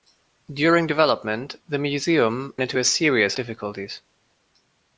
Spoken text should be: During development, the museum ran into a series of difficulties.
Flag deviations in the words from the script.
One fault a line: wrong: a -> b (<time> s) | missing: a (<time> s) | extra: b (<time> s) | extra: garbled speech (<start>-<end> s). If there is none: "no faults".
missing: ran (2.5 s)
missing: of (3.4 s)